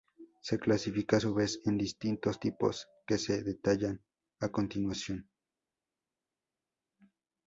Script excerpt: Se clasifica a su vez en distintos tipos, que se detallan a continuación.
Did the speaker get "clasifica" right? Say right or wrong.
right